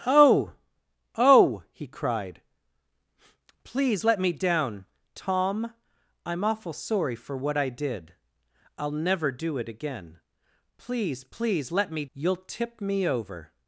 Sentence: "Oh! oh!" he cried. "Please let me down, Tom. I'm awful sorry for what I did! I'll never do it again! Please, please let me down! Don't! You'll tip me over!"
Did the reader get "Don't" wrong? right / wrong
wrong